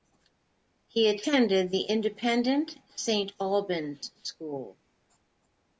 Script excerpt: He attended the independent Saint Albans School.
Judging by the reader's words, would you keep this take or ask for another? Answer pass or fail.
pass